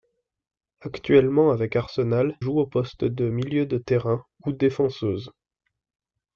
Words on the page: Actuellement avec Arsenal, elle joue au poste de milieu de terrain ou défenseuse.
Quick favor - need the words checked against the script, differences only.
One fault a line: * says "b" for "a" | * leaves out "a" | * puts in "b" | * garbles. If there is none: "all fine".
* leaves out "elle"